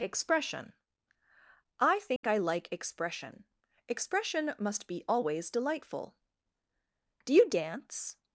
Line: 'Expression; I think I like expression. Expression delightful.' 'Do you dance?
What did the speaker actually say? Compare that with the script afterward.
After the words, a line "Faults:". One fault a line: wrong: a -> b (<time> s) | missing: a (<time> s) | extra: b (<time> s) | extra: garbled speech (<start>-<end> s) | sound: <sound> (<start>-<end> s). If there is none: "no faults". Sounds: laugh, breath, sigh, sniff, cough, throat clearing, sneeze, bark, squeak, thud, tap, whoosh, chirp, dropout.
'Expression; I think I like expression. Expression must be always delightful.' 'Do you dance?
Faults:
sound: dropout (2.2-2.2 s)
extra: must be always (4.6 s)